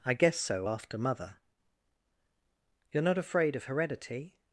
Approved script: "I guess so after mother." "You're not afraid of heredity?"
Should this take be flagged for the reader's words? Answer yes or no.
no